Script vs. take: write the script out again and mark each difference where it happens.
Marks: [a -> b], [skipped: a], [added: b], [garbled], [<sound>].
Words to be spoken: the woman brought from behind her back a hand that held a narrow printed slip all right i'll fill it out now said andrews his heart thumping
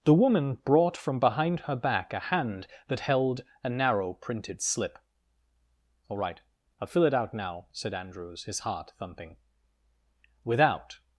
the woman brought from behind her back a hand that held a narrow printed slip all right i'll fill it out now said andrews his heart thumping [added: without]